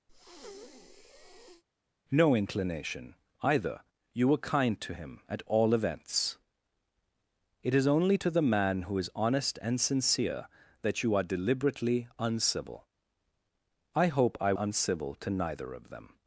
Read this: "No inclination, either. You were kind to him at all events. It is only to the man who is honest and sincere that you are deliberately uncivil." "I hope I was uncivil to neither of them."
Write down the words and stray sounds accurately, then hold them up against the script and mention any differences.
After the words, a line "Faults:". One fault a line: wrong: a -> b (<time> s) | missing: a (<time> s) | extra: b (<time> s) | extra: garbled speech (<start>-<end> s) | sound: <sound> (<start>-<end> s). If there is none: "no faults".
"No inclination, either. You were kind to him at all events. It is only to the man who is honest and sincere that you are deliberately uncivil." "I hope I uncivil to neither of them."
Faults:
sound: breath (0.1-1.6 s)
missing: was (14.5 s)